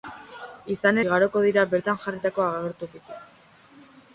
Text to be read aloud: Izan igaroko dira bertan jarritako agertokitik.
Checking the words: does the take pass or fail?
pass